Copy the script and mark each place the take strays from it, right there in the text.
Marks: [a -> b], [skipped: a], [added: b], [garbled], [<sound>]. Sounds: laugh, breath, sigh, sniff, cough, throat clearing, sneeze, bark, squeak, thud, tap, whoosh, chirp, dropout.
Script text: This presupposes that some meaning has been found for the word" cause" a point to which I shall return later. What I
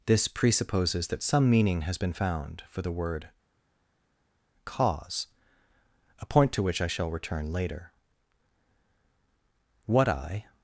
This presupposes that some meaning has been found for the word" cause" a point to which I shall return later. What I